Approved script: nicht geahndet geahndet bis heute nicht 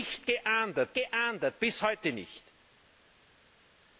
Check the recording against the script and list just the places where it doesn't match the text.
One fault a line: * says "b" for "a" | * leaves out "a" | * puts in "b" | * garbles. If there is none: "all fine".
all fine